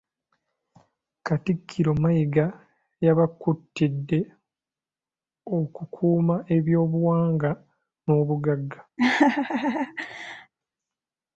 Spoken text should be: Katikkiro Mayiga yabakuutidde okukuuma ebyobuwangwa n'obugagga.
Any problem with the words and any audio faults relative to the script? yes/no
yes